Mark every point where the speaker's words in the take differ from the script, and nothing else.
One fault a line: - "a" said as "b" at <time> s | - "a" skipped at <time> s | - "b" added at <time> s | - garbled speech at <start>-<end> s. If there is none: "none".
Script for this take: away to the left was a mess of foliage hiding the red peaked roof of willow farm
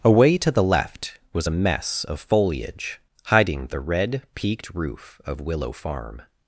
none